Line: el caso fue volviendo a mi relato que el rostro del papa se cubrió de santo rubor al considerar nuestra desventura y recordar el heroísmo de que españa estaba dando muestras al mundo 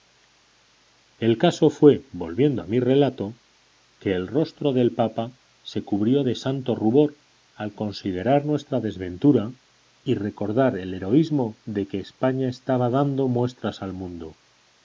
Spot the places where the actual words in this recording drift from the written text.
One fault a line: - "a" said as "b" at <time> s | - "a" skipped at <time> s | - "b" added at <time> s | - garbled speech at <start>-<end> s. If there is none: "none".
none